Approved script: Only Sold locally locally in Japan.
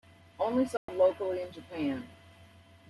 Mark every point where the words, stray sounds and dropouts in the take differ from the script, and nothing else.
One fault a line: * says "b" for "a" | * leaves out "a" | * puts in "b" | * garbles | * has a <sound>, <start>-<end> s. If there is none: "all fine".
* has a dropout, 0.8-0.9 s
* leaves out "locally"